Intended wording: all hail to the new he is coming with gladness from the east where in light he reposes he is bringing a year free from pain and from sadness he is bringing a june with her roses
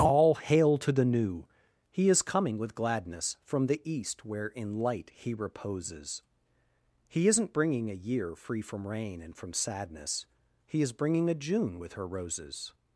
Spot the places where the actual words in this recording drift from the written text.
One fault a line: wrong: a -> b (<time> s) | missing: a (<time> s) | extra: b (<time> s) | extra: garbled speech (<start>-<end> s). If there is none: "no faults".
wrong: is -> isn't (7.3 s)
wrong: pain -> rain (8.9 s)